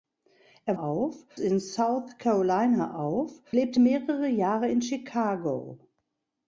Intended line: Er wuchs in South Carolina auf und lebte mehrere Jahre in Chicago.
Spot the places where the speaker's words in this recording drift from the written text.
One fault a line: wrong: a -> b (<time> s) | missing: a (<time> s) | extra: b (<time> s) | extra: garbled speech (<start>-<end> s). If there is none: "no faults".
wrong: wuchs -> auf (0.8 s)
missing: und (3.4 s)